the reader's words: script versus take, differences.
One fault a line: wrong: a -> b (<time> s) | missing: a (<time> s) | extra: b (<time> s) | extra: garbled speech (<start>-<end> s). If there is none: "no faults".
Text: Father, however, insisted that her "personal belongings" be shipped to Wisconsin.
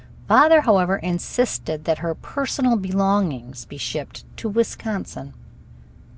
no faults